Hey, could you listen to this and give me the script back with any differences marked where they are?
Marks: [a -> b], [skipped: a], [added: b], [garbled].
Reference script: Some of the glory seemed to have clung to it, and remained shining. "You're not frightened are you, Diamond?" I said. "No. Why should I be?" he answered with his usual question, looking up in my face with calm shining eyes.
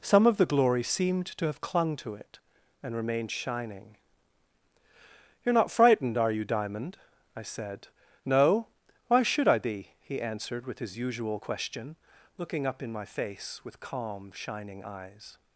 Some of the glory seemed to have clung to it, and remained shining. "You're not frightened are you, Diamond?" I said. "No. Why should I be?" he answered with his usual question, looking up in my face with calm shining eyes.